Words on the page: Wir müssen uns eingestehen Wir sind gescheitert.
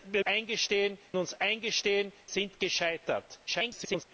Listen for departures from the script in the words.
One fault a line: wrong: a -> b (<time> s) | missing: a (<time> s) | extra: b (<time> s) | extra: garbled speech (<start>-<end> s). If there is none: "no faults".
wrong: müssen -> eingestehen (0.2 s)
missing: Wir (2.1 s)
extra: garbled speech (3.5-4.0 s)